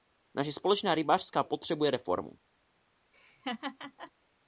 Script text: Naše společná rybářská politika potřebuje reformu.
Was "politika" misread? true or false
true